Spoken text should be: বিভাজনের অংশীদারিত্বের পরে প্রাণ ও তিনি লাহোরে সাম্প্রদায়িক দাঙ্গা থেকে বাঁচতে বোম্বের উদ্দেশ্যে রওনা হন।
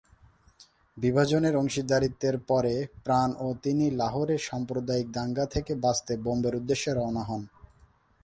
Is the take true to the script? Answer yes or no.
yes